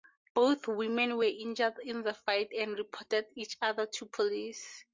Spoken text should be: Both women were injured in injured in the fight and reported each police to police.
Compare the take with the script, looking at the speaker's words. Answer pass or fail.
fail